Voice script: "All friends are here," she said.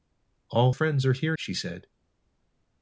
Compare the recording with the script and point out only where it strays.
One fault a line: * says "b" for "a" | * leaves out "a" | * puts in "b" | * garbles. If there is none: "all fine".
all fine